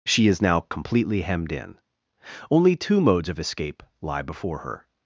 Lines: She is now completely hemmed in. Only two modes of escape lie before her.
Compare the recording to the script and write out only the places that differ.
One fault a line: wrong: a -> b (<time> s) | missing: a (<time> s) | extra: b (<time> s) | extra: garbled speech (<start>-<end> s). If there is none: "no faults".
no faults